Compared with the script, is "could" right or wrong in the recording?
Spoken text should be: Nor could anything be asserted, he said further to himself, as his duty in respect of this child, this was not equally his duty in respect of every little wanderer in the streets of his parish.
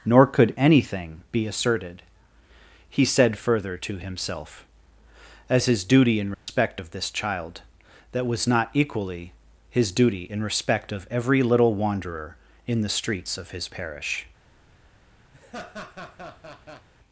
right